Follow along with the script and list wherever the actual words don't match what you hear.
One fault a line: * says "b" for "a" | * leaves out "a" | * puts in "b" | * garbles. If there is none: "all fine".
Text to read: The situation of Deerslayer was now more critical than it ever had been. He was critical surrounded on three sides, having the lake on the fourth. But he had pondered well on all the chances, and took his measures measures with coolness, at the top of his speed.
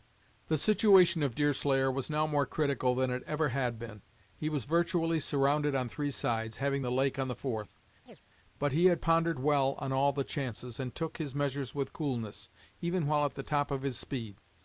* says "virtually" for "critical"
* leaves out "measures"
* puts in "even while"